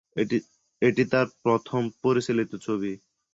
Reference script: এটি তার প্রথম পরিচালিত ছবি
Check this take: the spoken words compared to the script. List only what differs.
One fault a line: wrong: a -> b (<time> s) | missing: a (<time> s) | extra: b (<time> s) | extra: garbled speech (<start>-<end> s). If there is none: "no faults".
no faults